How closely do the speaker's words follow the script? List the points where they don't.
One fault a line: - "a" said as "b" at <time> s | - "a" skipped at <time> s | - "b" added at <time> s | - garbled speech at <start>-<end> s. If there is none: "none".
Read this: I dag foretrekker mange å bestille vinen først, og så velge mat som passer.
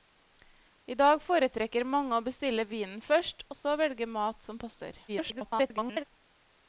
- garbled speech at 5.1-6.0 s